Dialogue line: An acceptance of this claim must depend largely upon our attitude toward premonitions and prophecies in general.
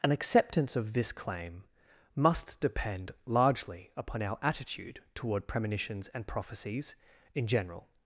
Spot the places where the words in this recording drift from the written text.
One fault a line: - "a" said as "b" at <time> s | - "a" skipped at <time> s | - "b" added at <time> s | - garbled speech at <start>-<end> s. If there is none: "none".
none